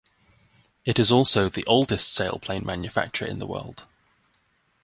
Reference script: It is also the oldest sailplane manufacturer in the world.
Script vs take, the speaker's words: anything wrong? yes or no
no